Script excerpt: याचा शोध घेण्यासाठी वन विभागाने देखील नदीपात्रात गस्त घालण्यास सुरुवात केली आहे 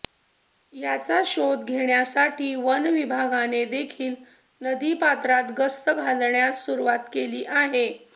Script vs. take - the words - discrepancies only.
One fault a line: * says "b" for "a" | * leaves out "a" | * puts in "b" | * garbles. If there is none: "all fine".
all fine